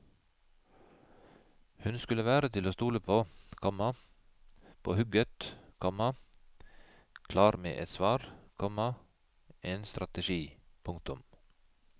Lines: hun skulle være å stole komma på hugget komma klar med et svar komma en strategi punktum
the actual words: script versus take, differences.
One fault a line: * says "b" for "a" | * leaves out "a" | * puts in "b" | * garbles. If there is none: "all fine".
* puts in "til"
* puts in "på"